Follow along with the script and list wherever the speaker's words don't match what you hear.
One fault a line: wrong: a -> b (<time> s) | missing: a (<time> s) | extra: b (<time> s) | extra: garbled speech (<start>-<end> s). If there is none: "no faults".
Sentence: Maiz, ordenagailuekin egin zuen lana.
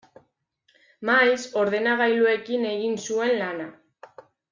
no faults